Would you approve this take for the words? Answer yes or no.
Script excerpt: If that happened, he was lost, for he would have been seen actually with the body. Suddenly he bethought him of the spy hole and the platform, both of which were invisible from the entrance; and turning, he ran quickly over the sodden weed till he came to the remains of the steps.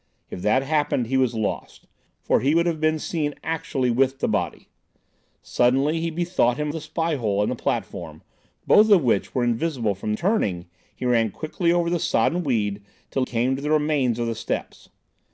no